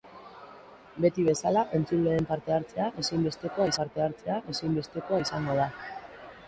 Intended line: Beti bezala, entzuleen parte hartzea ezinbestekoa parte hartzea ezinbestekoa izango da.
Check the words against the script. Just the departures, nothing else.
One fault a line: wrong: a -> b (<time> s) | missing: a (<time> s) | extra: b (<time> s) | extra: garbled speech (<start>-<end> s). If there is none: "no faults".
no faults